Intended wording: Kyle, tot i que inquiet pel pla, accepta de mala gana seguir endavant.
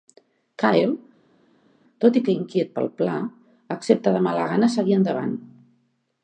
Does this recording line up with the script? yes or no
yes